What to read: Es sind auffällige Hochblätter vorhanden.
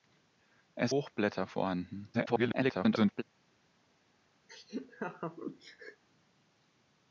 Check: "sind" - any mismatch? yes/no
yes